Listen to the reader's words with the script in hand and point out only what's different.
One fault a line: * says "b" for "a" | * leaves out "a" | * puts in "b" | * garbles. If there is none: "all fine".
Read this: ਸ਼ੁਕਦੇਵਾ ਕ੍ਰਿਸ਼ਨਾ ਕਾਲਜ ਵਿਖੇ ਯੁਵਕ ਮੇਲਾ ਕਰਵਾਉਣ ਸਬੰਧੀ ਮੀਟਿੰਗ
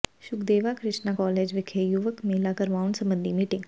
all fine